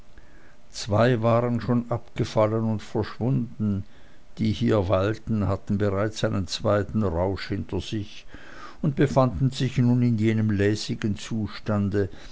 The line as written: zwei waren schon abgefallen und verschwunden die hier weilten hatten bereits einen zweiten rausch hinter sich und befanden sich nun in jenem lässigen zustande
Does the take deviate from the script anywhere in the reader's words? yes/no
no